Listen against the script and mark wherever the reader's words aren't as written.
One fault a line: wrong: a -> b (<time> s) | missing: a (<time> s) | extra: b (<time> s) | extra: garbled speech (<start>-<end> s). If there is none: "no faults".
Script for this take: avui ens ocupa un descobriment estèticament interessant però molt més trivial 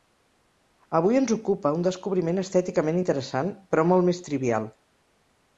no faults